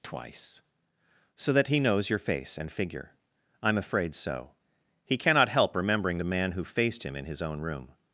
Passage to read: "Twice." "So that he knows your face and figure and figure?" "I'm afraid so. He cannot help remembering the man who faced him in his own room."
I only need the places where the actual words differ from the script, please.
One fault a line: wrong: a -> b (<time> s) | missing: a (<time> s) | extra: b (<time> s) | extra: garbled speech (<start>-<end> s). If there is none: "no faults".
missing: and figure (3.1 s)